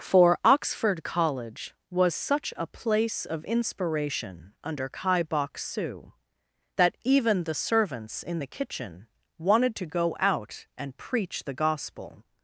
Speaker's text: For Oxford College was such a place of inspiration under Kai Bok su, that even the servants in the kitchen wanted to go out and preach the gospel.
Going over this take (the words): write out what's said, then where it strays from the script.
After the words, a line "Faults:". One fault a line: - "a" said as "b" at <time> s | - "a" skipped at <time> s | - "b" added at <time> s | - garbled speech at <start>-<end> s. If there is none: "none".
For Oxford College was such a place of inspiration under Kai Bok su, that even the servants in the kitchen wanted to go out and preach the gospel.
Faults:
none